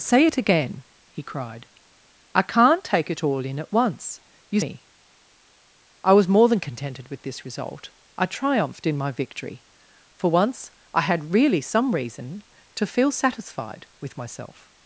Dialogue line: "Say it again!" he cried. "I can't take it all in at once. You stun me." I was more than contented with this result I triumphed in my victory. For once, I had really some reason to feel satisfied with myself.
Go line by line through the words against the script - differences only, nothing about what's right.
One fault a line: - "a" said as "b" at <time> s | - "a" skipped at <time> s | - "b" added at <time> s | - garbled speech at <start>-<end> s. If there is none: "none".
- "stun" skipped at 4.6 s